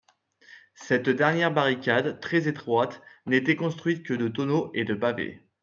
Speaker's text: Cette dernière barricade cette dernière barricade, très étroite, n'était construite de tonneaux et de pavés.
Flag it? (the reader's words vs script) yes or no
yes